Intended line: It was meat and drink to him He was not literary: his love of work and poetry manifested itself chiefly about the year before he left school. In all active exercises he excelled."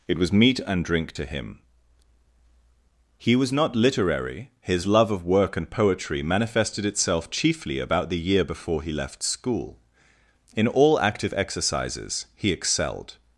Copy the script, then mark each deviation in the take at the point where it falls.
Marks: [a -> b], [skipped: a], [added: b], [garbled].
It was meat and drink to him He was not literary: his love of work and poetry manifested itself chiefly about the year before he left school. In all active exercises he excelled."